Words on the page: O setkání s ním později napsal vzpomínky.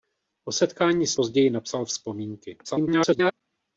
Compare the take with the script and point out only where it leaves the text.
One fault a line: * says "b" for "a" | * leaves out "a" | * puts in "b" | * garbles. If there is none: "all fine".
* leaves out "ním"
* garbles